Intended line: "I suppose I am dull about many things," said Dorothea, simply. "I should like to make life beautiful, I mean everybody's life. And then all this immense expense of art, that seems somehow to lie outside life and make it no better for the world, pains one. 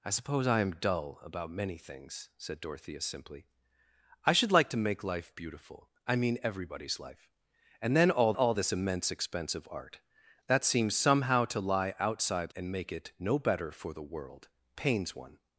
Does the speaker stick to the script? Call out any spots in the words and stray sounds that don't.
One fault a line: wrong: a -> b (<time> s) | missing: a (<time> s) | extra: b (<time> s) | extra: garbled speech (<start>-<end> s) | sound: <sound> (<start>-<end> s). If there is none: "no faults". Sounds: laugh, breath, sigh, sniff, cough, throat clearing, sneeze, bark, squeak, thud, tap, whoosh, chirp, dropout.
extra: all (8.3 s)
missing: life (12.5 s)